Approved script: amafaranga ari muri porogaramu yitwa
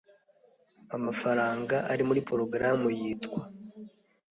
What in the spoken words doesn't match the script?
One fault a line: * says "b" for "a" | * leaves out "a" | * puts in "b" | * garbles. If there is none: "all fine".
all fine